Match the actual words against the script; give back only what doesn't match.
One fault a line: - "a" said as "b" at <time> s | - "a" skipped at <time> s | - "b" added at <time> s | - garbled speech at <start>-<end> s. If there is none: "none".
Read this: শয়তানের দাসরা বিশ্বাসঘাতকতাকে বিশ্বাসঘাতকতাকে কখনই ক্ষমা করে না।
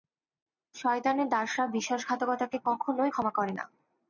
- "বিশ্বাসঘাতকতাকে" skipped at 2.6 s